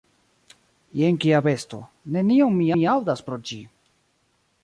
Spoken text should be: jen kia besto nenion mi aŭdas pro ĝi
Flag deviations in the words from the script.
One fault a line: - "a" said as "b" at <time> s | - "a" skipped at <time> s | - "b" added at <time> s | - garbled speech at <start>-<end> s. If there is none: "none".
- "mi" added at 2.8 s